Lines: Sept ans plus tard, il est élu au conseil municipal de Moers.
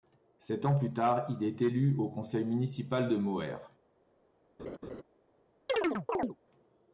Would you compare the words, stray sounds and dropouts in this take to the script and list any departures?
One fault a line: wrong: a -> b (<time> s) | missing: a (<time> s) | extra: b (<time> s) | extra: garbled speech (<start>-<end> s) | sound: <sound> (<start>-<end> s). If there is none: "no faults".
sound: laugh (4.6-5.0 s)
sound: chirp (5.7-6.4 s)